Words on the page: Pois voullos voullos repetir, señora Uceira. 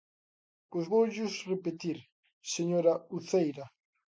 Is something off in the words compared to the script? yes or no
yes